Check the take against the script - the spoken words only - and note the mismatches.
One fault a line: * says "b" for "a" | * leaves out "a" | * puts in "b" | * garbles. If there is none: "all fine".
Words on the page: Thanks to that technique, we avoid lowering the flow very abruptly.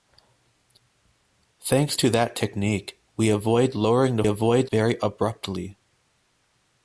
* says "avoid" for "flow"